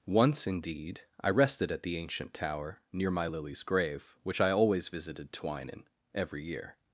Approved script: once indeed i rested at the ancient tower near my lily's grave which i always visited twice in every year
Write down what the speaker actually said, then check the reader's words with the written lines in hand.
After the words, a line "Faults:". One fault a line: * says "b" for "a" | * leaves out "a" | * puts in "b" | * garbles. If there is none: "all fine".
once indeed i rested at the ancient tower near my lily's grave which i always visited twine in every year
Faults:
* says "twine" for "twice"